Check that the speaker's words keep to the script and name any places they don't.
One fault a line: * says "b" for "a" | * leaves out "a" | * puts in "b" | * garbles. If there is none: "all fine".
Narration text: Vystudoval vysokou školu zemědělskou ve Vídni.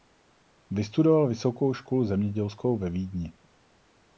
all fine